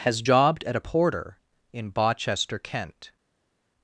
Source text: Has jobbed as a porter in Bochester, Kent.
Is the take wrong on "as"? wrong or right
wrong